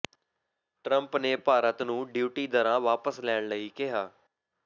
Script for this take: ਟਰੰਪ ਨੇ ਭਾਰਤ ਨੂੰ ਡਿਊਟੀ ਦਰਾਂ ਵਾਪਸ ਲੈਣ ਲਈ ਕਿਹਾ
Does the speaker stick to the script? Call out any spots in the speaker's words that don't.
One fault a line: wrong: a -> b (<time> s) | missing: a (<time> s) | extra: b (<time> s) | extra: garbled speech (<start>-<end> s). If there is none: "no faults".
no faults